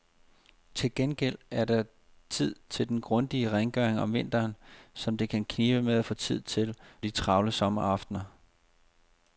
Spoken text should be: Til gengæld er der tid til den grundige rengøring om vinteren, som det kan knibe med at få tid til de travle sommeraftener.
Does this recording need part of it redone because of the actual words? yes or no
no